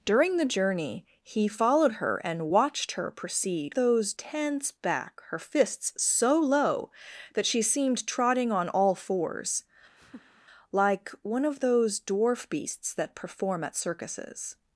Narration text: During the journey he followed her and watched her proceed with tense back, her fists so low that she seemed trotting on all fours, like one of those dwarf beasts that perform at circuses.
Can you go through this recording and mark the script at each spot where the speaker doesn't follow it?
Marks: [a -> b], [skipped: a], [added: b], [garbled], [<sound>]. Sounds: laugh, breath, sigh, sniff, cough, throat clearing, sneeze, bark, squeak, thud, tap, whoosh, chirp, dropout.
During the journey he followed her and watched her proceed [with -> those] tense back, her fists so low that she seemed trotting on all fours, [laugh] like one of those dwarf beasts that perform at circuses.